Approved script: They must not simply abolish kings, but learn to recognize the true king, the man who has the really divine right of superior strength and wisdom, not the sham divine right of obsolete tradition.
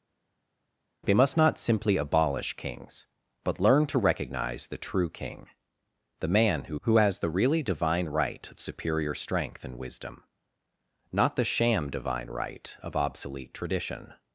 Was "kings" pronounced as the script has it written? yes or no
yes